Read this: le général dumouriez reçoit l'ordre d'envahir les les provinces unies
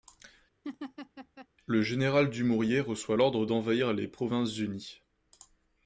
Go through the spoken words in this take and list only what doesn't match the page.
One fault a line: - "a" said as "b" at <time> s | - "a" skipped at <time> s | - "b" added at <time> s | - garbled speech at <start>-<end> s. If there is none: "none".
- "les" skipped at 4.1 s